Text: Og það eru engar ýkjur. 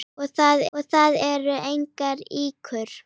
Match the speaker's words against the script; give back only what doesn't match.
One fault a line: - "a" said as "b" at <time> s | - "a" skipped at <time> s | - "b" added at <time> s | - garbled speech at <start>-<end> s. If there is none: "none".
- "og það" added at 0.8 s